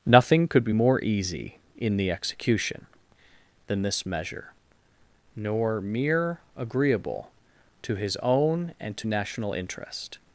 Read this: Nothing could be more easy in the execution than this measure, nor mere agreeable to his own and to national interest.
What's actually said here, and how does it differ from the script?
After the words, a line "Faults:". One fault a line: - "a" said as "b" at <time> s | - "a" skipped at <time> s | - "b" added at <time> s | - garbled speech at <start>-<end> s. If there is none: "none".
Nothing could be more easy in the execution than this measure, nor mere agreeable to his own and to national interest.
Faults:
none